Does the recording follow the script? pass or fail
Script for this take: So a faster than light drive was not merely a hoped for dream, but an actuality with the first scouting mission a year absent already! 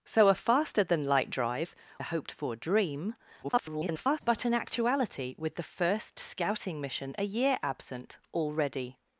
fail